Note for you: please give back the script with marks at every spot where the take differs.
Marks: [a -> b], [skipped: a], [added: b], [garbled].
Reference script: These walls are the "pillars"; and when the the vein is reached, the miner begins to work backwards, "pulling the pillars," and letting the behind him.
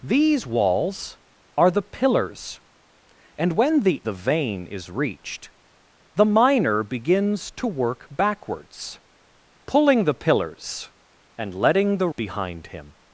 These walls are the "pillars"; and when the the vein is reached, the miner begins to work backwards, "pulling the pillars," and letting the behind him.